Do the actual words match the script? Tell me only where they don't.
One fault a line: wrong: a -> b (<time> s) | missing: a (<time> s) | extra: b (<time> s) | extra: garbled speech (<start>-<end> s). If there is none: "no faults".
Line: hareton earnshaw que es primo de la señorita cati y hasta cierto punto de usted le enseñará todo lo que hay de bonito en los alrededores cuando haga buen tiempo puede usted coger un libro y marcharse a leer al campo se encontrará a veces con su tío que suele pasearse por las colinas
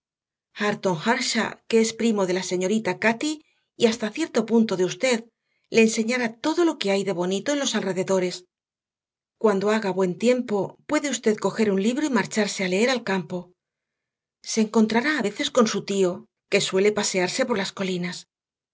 no faults